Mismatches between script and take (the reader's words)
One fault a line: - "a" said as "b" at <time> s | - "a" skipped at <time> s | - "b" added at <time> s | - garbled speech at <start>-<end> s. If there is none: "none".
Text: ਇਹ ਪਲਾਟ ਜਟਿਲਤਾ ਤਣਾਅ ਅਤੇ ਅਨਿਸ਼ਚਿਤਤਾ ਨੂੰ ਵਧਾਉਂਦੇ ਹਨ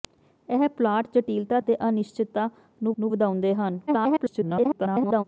- "ਤਣਾਅ" skipped at 1.6 s
- "ਨੂੰ" added at 3.0 s
- garbled speech at 3.9-5.2 s